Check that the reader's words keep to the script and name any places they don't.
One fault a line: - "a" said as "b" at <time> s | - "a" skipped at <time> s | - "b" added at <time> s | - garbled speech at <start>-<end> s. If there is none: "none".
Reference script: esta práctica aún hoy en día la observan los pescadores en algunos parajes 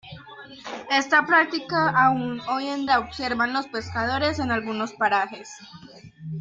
- "día" skipped at 2.9 s